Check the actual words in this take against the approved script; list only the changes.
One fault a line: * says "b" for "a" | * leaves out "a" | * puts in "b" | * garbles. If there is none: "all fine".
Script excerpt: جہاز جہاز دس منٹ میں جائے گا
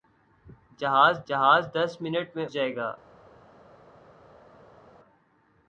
all fine